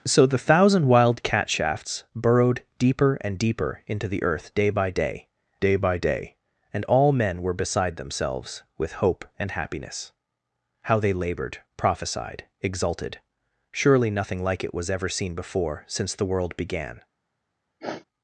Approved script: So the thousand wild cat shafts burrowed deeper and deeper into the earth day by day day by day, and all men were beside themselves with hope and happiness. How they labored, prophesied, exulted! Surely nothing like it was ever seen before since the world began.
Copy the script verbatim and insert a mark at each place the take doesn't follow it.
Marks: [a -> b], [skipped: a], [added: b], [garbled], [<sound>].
So the thousand wild cat shafts burrowed deeper and deeper into the earth day by day day by day, and all men were beside themselves with hope and happiness. How they labored, prophesied, exulted! Surely nothing like it was ever seen before since the world began. [sniff]